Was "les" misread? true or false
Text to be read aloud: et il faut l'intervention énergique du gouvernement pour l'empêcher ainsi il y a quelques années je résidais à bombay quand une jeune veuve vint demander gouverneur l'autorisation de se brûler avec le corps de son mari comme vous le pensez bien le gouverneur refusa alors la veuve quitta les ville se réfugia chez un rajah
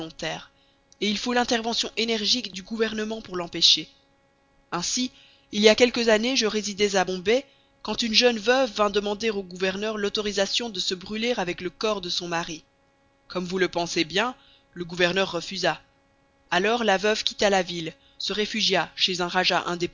true